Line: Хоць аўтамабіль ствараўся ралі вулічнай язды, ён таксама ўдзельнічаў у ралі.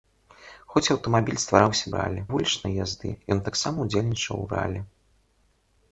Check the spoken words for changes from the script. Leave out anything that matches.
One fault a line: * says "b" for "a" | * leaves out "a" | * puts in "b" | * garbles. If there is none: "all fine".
all fine